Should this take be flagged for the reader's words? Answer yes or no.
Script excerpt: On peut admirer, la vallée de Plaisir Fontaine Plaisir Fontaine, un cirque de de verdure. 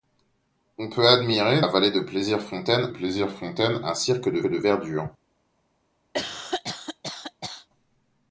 no